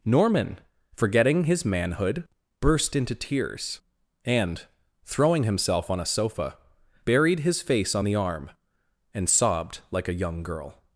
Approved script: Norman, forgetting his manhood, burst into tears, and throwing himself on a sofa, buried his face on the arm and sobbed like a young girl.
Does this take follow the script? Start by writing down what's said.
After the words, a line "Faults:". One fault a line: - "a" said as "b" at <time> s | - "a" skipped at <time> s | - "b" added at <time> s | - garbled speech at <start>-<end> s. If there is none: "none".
Norman, forgetting his manhood, burst into tears, and throwing himself on a sofa, buried his face on the arm and sobbed like a young girl.
Faults:
none